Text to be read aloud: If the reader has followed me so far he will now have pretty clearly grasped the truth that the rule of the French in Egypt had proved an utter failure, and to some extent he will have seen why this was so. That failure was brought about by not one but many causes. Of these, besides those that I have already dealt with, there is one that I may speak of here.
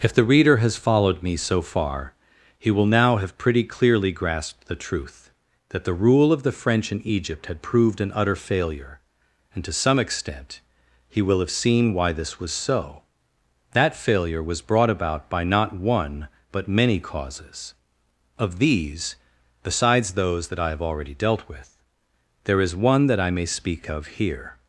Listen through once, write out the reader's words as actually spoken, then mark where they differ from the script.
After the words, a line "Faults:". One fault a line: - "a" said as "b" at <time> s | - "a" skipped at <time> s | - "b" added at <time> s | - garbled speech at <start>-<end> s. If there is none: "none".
If the reader has followed me so far he will now have pretty clearly grasped the truth that the rule of the French in Egypt had proved an utter failure, and to some extent he will have seen why this was so. That failure was brought about by not one but many causes. Of these, besides those that I have already dealt with, there is one that I may speak of here.
Faults:
none